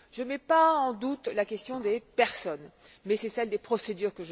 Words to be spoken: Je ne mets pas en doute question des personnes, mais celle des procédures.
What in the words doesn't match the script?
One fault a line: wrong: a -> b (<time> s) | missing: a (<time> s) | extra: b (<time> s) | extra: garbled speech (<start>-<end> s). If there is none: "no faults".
extra: la (1.3 s)